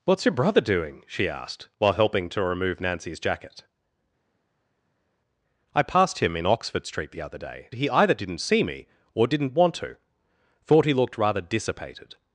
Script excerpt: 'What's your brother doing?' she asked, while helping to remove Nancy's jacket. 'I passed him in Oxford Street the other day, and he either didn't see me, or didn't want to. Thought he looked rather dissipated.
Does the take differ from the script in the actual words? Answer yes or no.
yes